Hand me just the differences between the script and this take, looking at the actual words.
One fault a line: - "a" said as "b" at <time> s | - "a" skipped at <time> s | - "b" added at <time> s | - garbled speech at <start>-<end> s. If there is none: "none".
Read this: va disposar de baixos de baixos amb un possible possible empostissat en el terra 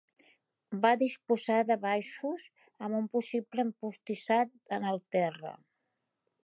- "de baixos" skipped at 2.5 s
- "possible" skipped at 3.7 s